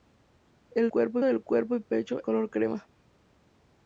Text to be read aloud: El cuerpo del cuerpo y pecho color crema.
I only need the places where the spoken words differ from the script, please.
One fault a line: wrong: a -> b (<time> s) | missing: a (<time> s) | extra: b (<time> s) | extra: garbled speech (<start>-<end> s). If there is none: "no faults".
no faults